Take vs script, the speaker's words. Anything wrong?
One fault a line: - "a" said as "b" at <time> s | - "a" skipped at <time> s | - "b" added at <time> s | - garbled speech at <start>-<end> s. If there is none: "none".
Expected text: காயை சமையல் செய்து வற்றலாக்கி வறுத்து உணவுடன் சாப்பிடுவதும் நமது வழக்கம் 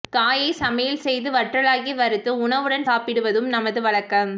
none